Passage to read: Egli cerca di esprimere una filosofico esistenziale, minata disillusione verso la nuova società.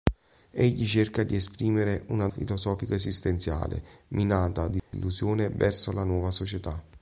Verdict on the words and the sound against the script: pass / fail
fail